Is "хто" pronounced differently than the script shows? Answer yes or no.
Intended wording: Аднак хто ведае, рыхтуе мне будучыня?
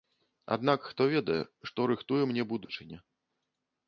no